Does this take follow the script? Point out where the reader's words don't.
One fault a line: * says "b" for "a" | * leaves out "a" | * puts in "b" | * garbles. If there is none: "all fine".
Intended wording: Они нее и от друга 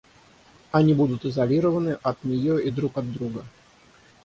* puts in "будут изолированы от"
* puts in "друг"